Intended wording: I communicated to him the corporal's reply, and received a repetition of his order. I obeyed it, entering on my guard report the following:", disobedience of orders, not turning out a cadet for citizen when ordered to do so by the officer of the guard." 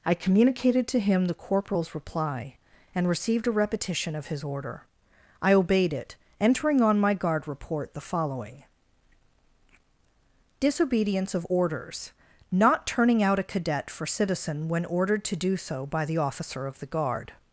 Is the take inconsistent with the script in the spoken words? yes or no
no